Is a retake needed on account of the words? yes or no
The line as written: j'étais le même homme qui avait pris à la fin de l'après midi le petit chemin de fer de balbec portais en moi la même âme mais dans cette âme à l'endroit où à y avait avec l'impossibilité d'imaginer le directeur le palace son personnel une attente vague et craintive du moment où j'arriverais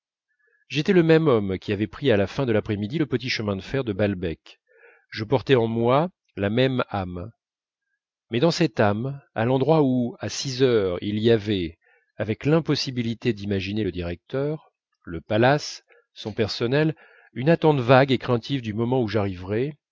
yes